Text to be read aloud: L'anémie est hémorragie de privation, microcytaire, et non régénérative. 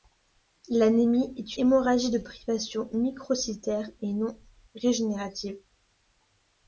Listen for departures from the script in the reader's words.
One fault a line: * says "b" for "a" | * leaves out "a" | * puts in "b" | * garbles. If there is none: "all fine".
all fine